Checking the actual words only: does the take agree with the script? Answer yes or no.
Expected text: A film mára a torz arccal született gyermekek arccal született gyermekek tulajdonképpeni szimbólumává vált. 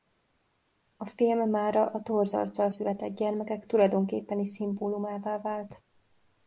no